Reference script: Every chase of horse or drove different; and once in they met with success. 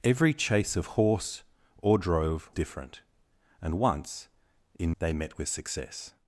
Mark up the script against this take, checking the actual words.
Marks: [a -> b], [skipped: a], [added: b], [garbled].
Every chase of horse or drove different; and once in they met with success.